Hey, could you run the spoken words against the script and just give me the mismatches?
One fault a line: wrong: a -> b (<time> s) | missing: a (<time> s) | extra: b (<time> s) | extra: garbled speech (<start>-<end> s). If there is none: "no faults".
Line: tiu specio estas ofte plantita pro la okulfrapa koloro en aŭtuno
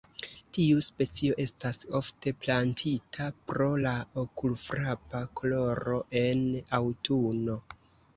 no faults